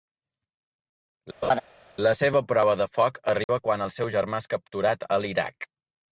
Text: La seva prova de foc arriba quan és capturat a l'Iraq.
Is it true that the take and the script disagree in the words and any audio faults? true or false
true